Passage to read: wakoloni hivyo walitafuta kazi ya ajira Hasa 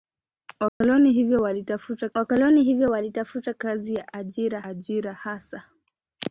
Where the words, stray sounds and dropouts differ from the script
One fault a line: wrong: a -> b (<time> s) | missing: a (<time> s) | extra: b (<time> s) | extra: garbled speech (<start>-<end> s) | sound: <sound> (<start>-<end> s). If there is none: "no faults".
sound: dropout (0.7-0.8 s)
extra: wakoloni hivyo walitafuta (2.1 s)
extra: ajira (4.6 s)